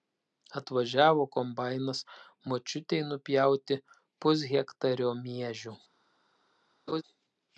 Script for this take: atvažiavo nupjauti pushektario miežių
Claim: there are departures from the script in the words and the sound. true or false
true